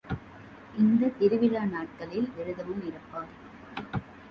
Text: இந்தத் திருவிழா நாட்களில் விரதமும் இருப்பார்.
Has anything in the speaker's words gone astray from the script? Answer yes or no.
no